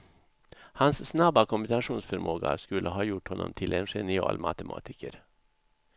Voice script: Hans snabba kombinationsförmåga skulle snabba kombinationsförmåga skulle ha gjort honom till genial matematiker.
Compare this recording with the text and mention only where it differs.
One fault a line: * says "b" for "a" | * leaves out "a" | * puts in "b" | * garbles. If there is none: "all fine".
* leaves out "snabba kombinationsförmåga skulle"
* puts in "en"